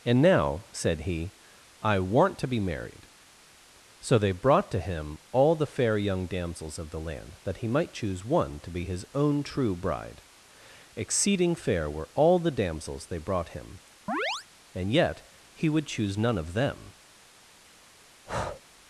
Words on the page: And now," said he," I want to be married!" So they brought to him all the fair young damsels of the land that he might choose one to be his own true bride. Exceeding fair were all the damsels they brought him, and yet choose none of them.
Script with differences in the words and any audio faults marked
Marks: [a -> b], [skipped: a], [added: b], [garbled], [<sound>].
And now," said he," I want to be married!" So they brought to him all the fair young damsels of the land that he might choose one to be his own true bride. Exceeding fair were all the damsels they brought him, [chirp] and yet [added: he would] choose none of them. [breath]